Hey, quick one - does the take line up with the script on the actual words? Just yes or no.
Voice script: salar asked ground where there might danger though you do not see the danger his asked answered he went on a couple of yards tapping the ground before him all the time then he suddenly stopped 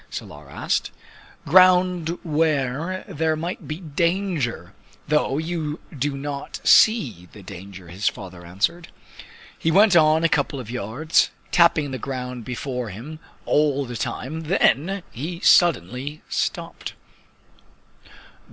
no